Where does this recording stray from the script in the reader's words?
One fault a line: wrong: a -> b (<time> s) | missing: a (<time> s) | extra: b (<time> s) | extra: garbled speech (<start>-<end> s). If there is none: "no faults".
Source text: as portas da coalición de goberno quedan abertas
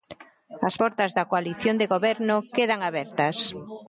no faults